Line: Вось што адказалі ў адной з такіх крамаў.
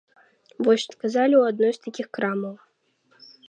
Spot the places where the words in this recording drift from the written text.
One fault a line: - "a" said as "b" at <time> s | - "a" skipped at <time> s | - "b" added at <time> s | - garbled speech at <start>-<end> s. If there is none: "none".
none